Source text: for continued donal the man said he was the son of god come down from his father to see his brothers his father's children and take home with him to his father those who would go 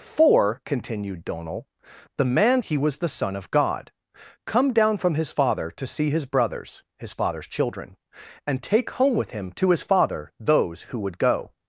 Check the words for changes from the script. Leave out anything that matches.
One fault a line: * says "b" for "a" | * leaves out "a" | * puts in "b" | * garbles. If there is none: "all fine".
* leaves out "said"